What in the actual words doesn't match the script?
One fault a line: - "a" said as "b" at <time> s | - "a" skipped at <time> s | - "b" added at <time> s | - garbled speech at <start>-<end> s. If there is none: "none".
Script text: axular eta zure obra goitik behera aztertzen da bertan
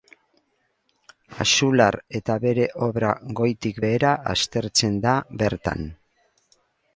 - "zure" said as "bere" at 2.4 s